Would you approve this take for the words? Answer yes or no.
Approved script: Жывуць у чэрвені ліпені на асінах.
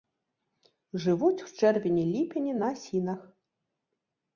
yes